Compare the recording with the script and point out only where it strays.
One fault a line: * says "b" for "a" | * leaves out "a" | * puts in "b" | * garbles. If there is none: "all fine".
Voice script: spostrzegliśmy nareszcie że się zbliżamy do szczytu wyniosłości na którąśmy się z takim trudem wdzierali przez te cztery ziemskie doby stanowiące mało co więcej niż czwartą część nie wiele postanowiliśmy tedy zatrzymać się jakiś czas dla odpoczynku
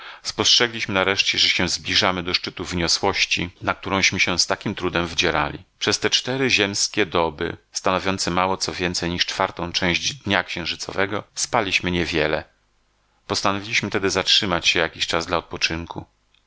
* puts in "dnia księżycowego spaliśmy"